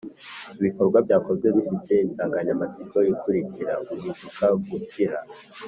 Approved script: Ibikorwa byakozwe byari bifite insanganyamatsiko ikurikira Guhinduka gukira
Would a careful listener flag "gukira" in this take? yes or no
no